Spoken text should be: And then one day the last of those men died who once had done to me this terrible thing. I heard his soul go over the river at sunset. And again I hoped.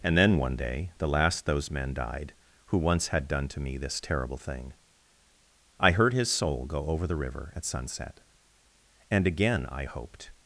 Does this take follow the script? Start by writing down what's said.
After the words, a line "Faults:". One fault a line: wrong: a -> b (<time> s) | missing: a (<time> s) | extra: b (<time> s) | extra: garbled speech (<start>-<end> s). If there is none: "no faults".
And then one day the last those men died who once had done to me this terrible thing. I heard his soul go over the river at sunset. And again I hoped.
Faults:
missing: of (1.4 s)